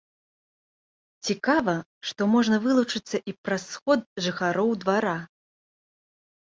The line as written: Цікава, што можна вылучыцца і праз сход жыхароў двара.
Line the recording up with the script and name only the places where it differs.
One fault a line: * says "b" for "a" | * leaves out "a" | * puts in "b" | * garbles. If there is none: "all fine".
all fine